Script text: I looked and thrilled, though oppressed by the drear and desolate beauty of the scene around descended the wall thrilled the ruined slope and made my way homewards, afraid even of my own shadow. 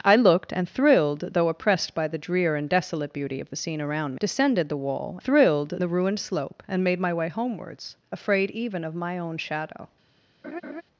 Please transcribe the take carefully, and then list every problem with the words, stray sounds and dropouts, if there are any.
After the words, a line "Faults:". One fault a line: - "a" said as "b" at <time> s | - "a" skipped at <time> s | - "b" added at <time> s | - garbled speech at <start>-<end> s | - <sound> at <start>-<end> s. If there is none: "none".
I looked and thrilled, though oppressed by the drear and desolate beauty of the scene around descended the wall thrilled the ruined slope and made my way homewards, afraid even of my own shadow.
Faults:
- laugh at 10.4-10.8 s